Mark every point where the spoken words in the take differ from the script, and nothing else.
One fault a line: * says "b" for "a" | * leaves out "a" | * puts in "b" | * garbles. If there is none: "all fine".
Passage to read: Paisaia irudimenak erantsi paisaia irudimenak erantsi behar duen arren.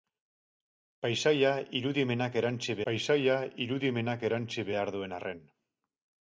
all fine